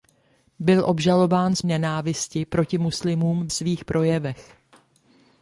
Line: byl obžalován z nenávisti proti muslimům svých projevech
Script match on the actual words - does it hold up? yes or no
yes